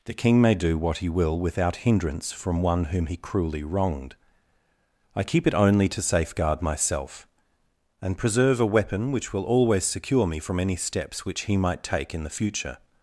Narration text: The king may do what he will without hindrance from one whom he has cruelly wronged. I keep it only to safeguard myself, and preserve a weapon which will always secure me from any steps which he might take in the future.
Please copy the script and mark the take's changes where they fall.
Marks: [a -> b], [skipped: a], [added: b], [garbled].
The king may do what he will without hindrance from one whom he [skipped: has] cruelly wronged. I keep it only to safeguard myself, and preserve a weapon which will always secure me from any steps which he might take in the future.